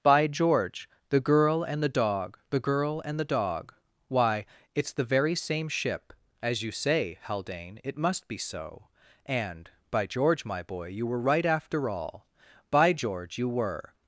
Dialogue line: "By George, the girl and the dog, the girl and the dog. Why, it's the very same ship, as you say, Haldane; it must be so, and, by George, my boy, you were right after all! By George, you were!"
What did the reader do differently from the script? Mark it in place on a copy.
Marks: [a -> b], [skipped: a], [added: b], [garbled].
"By George, the girl and the dog, the girl and the dog. Why, it's the very same ship, as you say, Haldane; it must be so, and, by George, my boy, you were right after all! By George, you were!"